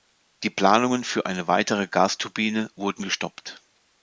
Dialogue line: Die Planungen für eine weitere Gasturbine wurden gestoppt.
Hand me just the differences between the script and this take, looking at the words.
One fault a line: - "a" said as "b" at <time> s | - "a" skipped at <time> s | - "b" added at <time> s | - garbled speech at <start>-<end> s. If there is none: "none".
none